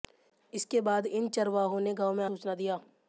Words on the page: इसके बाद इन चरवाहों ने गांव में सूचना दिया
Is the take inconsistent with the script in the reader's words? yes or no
no